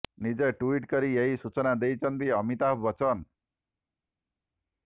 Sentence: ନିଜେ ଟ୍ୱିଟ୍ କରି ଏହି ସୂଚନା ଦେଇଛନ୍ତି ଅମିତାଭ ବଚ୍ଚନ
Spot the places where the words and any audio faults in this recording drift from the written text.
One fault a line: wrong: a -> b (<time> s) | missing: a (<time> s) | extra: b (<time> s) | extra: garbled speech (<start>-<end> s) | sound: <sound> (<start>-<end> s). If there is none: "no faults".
no faults